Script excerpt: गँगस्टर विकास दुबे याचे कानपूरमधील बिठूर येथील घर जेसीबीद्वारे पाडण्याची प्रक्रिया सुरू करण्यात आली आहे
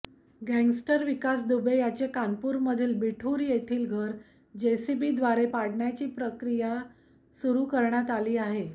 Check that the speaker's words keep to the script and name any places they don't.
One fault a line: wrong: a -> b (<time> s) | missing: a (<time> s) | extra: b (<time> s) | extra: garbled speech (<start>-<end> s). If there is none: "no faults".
no faults